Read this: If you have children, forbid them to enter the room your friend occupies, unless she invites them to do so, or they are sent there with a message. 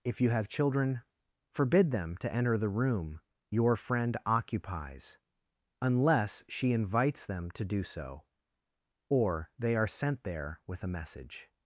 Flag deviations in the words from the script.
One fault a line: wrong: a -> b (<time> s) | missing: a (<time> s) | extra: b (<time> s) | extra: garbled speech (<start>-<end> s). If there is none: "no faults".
no faults